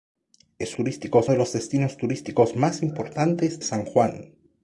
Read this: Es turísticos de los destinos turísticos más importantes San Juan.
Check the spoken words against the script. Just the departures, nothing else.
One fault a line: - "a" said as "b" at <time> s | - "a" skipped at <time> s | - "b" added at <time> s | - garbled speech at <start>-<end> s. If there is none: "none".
none